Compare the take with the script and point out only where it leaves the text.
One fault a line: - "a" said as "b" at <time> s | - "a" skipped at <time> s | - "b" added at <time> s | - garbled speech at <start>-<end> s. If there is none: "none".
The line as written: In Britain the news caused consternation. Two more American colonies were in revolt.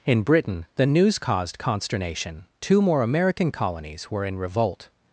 none